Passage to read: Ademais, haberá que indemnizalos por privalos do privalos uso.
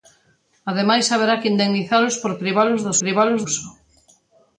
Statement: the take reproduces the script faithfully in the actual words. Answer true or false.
true